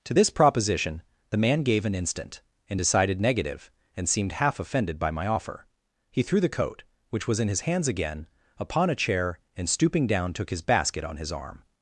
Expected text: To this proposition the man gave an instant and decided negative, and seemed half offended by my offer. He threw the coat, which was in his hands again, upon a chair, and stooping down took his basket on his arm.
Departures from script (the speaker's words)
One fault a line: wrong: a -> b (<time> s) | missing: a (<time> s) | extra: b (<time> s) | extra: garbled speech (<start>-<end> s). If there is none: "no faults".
no faults